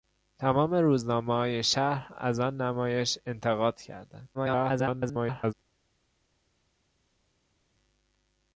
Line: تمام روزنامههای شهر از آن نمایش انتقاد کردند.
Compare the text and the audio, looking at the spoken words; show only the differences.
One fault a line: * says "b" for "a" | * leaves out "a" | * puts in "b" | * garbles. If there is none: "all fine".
* garbles